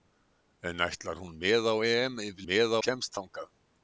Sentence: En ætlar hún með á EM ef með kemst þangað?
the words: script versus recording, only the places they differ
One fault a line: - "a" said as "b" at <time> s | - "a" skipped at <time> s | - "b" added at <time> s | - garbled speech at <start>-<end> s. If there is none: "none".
none